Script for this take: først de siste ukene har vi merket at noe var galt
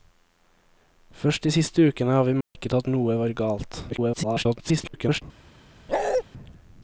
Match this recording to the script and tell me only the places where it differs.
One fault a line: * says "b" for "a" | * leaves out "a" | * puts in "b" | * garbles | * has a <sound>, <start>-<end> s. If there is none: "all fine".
* has a dropout, 2.4-2.6 s
* garbles
* has a bark, 5.9-6.2 s